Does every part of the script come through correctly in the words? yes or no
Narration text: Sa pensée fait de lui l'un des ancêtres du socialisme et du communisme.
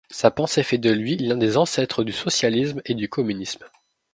yes